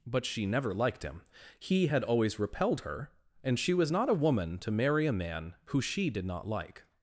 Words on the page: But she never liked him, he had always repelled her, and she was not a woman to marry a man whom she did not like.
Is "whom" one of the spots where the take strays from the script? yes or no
yes